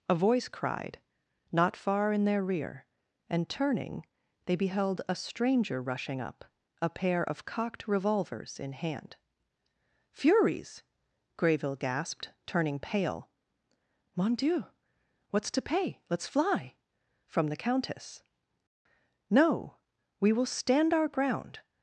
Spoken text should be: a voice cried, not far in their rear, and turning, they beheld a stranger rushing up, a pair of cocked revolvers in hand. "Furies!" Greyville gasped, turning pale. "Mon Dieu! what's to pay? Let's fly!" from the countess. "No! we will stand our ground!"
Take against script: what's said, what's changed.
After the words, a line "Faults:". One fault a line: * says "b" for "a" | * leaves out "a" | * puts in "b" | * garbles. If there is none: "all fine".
a voice cried, not far in their rear, and turning, they beheld a stranger rushing up, a pair of cocked revolvers in hand. "Furies!" Greyville gasped, turning pale. "Mon Dieu! what's to pay? Let's fly!" from the countess. "No! we will stand our ground!"
Faults:
all fine